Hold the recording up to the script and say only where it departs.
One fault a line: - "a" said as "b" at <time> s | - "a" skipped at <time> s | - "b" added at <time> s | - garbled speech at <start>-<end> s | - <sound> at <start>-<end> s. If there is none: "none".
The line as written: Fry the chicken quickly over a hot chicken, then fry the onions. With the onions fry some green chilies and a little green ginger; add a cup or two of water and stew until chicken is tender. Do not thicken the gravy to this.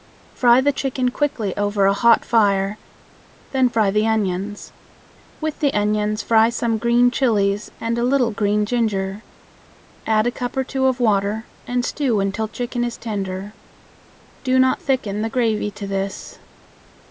- "chicken" said as "fire" at 2.2 s